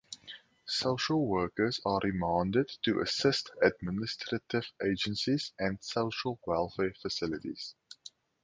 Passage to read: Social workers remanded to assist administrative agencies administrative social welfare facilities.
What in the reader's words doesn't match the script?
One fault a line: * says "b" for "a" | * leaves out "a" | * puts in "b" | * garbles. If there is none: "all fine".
* puts in "are"
* says "and" for "administrative"